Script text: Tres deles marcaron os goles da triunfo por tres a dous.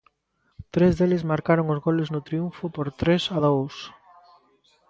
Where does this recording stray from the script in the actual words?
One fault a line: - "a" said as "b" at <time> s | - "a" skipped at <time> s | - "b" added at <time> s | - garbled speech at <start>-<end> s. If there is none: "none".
- "da" said as "no" at 2.1 s